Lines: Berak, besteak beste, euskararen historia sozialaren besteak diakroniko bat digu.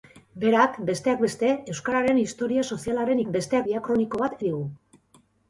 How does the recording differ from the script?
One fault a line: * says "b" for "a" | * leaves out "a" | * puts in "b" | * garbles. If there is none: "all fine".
all fine